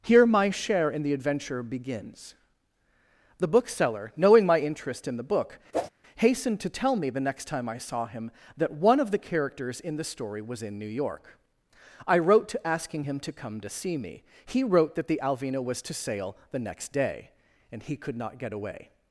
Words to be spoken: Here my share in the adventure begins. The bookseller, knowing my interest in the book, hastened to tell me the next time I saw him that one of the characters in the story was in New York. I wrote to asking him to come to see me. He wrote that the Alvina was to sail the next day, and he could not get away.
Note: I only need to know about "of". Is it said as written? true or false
true